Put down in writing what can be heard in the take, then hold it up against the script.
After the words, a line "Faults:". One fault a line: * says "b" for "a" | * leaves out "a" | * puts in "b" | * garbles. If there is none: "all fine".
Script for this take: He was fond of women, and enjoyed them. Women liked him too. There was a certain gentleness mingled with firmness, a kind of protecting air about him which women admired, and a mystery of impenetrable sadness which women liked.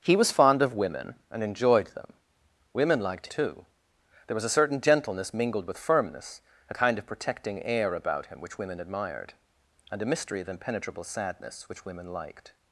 He was fond of women, and enjoyed them. Women liked too. There was a certain gentleness mingled with firmness, a kind of protecting air about him which women admired, and a mystery of impenetrable sadness which women liked.
Faults:
* leaves out "him"